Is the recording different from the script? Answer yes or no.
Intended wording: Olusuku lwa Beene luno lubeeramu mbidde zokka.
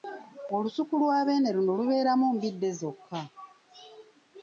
no